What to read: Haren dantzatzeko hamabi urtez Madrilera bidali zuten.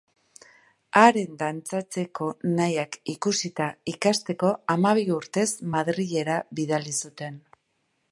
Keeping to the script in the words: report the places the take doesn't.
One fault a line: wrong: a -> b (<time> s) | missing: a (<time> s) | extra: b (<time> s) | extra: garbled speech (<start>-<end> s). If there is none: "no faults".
extra: nahiak ikusita ikasteko (2.6 s)